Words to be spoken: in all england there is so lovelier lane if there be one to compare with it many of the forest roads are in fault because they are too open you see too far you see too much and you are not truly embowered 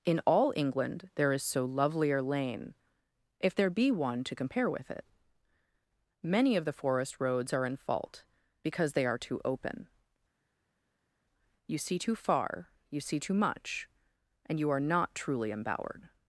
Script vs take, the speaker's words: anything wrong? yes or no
no